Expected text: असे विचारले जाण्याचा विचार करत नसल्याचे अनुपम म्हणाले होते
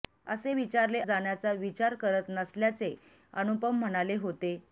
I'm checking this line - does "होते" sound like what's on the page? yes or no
yes